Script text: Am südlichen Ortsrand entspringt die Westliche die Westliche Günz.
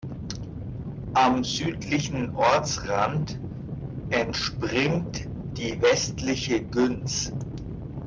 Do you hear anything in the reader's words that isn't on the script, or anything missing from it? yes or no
yes